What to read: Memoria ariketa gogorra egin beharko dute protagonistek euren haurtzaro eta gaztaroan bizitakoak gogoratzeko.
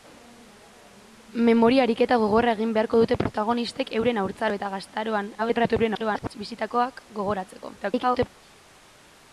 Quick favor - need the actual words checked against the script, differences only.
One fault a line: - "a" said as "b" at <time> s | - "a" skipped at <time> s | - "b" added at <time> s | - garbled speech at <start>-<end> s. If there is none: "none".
- garbled speech at 5.4-6.4 s
- garbled speech at 7.8-8.4 s